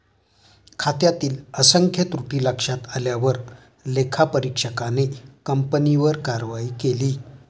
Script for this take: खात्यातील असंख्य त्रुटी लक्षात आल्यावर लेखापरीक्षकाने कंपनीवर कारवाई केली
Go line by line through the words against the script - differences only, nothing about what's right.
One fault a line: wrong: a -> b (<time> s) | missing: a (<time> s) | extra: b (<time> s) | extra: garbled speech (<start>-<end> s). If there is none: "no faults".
no faults